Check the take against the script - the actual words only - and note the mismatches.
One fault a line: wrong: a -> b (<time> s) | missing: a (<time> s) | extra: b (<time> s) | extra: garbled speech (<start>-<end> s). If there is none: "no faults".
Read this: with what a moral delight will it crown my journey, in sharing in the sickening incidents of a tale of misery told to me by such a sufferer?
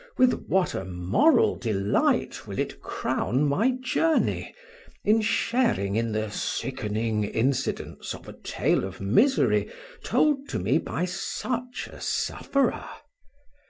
no faults